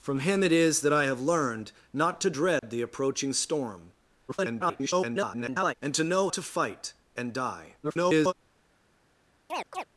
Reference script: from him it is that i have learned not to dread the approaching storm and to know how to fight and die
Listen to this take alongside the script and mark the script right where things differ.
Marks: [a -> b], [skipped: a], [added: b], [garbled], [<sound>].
from him it is that i have learned not to dread [dropout] the approaching storm [garbled] and to know [skipped: how] to fight and die [garbled] [chirp]